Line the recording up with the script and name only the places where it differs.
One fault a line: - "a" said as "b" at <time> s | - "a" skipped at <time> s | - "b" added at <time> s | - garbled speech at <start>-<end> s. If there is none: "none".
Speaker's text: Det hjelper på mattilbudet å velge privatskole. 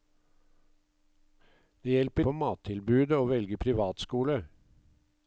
none